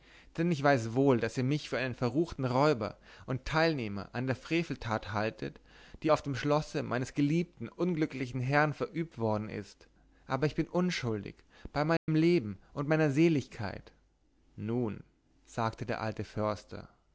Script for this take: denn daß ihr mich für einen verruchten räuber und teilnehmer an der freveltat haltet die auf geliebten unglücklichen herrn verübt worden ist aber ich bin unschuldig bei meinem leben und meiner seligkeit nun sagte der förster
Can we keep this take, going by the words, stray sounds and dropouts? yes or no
no